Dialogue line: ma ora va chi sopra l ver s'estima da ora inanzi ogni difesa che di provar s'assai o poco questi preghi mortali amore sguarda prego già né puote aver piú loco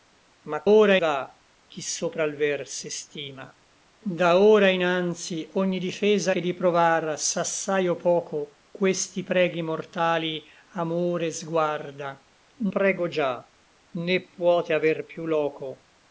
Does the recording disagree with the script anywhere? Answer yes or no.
no